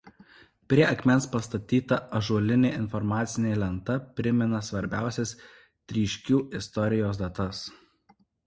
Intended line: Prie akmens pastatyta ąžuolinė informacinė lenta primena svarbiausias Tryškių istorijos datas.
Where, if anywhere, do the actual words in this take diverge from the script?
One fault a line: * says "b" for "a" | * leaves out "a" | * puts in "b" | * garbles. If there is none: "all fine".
all fine